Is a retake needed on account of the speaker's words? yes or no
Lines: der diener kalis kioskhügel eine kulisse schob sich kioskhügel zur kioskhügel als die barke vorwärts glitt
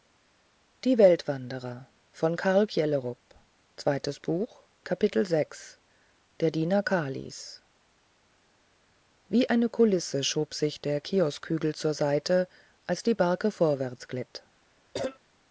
yes